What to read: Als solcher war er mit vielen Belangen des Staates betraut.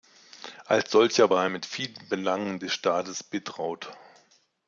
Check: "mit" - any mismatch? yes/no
no